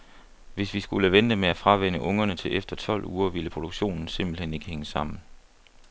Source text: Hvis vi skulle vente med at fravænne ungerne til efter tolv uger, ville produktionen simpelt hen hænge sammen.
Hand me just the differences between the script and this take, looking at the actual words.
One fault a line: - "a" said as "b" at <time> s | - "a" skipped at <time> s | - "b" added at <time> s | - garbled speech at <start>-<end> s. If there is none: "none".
- "ikke" added at 4.5 s